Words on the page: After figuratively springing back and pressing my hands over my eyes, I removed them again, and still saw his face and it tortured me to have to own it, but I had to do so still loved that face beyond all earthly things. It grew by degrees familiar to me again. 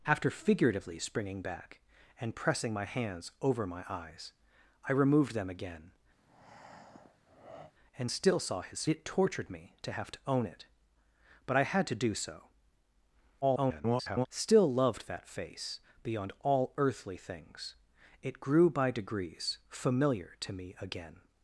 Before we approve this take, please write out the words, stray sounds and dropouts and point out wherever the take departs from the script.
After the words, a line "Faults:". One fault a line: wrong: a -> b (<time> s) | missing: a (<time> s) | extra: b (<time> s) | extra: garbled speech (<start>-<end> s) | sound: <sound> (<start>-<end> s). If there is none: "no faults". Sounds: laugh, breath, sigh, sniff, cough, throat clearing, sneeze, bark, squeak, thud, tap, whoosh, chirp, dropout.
After figuratively springing back and pressing my hands over my eyes, I removed them again, and still saw his it tortured me to have to own it, but I had to do so [garbled] still loved that face beyond all earthly things. It grew by degrees familiar to me again.
Faults:
sound: breath (6.2-7.7 s)
missing: face and (8.9 s)
extra: garbled speech (13.4-14.3 s)